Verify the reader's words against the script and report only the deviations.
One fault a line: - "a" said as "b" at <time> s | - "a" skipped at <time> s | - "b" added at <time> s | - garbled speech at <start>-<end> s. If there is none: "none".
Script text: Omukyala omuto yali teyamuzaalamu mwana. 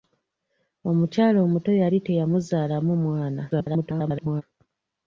- garbled speech at 3.5-4.4 s